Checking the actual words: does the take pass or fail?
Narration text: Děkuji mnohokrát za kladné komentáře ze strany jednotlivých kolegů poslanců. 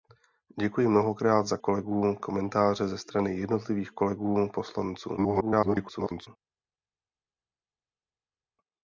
fail